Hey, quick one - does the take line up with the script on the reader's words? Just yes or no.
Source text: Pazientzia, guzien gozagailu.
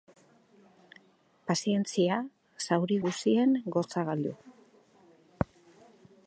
no